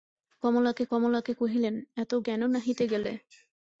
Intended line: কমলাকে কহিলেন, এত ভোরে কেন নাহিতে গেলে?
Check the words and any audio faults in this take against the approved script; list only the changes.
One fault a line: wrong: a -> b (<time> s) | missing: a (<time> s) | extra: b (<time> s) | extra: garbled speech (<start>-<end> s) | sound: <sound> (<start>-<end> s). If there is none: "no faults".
extra: কমলাকে (0.9 s)
missing: ভোরে (2.1 s)